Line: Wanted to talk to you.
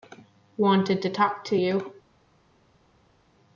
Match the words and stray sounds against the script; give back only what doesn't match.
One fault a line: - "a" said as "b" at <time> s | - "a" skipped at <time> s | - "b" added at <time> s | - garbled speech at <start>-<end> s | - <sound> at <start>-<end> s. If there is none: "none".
none